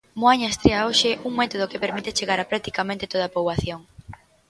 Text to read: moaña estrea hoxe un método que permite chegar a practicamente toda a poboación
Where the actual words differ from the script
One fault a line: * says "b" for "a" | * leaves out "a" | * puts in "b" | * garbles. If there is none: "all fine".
all fine